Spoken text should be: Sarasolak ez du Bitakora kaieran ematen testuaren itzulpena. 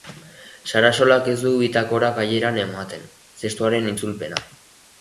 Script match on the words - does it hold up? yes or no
yes